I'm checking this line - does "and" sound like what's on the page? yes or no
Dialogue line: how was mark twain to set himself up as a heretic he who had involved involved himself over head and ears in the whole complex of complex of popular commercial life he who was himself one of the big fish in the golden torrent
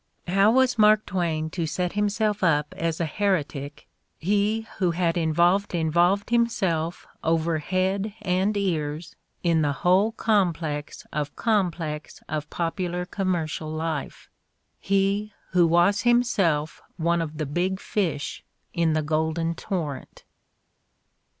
yes